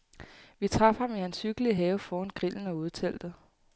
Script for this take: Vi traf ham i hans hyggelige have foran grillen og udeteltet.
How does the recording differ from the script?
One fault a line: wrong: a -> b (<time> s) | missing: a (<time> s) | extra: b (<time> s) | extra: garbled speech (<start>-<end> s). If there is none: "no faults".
no faults